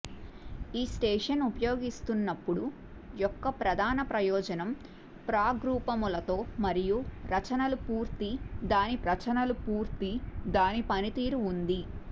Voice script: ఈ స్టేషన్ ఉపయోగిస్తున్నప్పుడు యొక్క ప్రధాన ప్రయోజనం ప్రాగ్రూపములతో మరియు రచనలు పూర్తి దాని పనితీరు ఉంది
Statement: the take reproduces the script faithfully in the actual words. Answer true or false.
false